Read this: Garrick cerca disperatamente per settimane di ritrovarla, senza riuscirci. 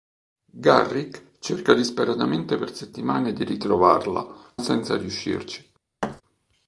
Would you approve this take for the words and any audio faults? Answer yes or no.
no